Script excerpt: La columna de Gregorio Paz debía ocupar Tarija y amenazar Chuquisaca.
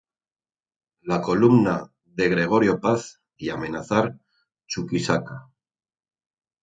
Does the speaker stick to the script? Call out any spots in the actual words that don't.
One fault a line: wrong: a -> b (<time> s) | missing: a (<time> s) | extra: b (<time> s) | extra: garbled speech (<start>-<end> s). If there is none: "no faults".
missing: debía ocupar Tarija (3.2 s)